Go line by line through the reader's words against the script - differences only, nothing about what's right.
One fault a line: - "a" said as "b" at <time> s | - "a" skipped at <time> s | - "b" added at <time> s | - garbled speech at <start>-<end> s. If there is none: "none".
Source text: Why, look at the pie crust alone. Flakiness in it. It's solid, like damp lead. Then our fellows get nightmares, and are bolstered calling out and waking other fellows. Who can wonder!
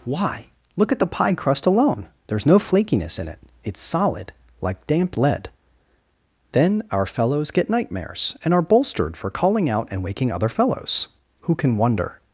- "There's no" added at 2.3 s
- "for" added at 9.2 s